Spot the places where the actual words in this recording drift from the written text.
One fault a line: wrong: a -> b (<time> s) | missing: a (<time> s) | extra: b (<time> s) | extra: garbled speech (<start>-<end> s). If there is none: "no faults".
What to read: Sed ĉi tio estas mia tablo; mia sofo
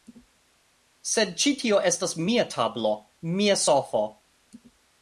no faults